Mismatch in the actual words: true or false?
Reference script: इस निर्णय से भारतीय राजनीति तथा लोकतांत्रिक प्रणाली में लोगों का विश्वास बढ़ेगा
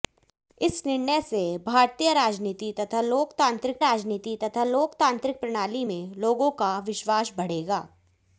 true